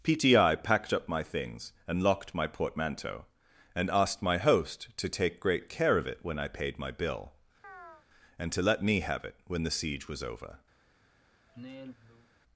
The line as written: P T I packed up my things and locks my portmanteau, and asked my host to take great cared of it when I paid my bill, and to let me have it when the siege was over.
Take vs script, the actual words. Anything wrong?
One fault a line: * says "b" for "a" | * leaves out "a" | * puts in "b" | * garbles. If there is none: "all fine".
* says "locked" for "locks"
* says "care" for "cared"